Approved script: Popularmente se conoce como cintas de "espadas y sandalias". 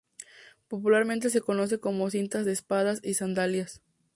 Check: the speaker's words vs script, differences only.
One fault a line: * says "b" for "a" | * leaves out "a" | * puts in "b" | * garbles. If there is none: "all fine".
all fine